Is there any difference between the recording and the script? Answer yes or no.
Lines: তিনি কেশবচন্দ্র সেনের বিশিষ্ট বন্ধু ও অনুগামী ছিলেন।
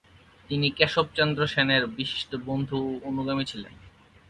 no